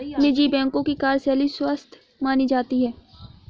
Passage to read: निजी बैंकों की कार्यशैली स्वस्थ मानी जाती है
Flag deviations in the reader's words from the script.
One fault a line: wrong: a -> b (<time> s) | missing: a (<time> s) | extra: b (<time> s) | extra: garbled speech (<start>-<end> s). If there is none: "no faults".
no faults